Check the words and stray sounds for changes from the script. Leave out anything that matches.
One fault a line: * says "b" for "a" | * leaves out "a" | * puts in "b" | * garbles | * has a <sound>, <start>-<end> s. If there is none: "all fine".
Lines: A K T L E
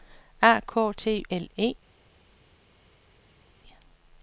all fine